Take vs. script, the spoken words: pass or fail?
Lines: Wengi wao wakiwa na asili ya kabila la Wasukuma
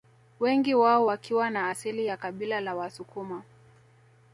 pass